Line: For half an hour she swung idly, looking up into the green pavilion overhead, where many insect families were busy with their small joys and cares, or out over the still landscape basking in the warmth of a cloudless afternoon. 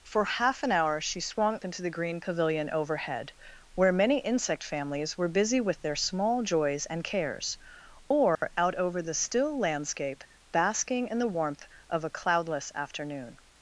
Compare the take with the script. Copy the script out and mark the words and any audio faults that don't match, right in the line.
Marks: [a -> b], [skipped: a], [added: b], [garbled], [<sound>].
For half an hour she swung [skipped: idly, looking up] into the green pavilion overhead, where many insect families were busy with their small joys and cares, or [dropout] out over the still landscape basking in the warmth of a cloudless afternoon.